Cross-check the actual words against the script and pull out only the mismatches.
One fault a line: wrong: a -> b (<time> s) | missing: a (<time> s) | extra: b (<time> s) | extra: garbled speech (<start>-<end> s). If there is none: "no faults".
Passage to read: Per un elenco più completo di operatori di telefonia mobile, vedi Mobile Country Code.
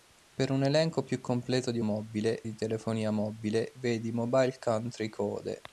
wrong: operatori -> mobile (1.8 s)